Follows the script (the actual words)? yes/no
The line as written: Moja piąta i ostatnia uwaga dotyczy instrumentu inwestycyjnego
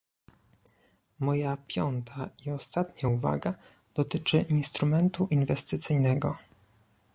yes